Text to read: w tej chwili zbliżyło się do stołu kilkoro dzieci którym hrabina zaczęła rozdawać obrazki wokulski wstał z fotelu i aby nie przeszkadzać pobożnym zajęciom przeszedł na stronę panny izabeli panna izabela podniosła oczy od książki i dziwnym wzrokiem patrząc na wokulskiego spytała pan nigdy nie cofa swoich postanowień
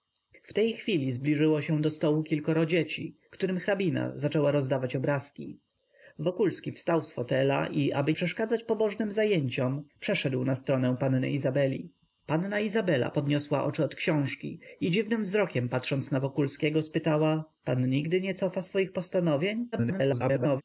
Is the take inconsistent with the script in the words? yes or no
yes